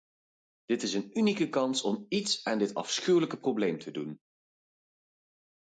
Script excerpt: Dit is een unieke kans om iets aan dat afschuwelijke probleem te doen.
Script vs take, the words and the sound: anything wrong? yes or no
yes